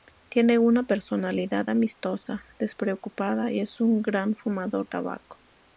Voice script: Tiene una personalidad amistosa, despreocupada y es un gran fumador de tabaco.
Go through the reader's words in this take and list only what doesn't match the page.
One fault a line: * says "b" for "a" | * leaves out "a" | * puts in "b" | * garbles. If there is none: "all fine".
* leaves out "de"